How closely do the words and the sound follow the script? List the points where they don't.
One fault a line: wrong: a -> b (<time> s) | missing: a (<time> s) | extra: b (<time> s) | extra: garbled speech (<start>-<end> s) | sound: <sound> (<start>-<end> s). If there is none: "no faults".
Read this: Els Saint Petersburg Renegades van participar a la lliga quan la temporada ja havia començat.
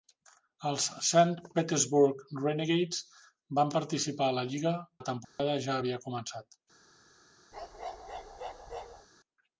missing: quan (4.7 s)
sound: dropout (5.2-5.4 s)
sound: bark (7.5-9.1 s)